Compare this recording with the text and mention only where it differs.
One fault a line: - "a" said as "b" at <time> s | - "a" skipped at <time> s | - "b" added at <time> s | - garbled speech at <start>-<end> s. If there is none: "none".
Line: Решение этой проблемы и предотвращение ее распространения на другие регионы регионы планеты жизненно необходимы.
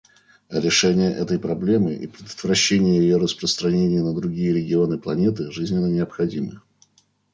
- "регионы" skipped at 5.0 s